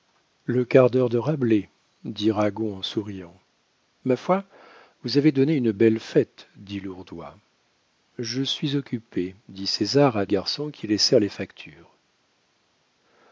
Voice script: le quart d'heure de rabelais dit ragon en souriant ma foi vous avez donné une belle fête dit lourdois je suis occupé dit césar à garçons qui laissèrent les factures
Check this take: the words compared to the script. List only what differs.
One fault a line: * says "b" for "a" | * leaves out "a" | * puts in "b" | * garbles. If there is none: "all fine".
all fine